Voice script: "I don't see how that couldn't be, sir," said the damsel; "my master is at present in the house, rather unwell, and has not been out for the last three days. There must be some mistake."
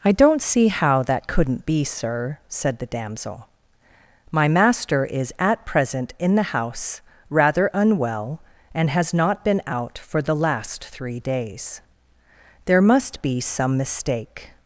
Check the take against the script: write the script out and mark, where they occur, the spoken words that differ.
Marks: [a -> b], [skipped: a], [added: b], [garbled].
"I don't see how that couldn't be, sir," said the damsel; "my master is at present in the house, rather unwell, and has not been out for the last three days. There must be some mistake."